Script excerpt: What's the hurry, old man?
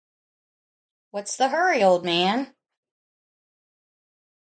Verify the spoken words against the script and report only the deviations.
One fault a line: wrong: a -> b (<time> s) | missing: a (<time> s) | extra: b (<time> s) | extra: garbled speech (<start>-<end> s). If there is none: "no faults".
no faults